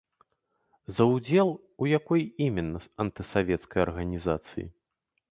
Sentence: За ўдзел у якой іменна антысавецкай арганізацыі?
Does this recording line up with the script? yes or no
yes